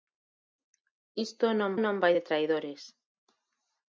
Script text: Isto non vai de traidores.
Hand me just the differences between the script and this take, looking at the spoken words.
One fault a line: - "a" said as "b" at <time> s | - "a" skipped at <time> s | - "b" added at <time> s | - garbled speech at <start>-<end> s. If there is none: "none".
- "non" added at 1.8 s